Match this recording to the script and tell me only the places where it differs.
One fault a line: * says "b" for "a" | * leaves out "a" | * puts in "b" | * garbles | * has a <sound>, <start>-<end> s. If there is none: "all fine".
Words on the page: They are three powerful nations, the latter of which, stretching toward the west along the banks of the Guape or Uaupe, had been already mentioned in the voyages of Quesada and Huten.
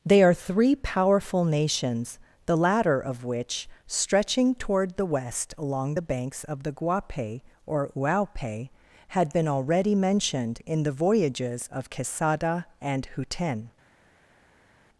all fine